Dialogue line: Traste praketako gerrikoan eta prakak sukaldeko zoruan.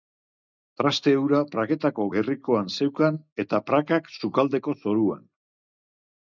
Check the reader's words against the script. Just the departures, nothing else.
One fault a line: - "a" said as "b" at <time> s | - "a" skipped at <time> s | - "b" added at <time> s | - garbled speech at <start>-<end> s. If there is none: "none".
- "hura" added at 1.2 s
- "zeukan" added at 2.8 s